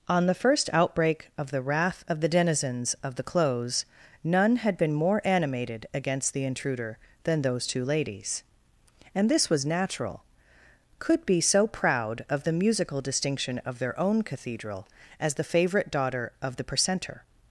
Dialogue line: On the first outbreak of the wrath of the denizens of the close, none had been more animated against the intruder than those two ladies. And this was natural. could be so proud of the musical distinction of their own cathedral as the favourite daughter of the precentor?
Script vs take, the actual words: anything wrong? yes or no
no